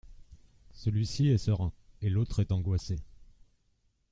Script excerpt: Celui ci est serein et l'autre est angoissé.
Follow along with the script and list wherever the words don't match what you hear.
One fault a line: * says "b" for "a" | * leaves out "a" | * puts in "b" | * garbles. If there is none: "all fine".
all fine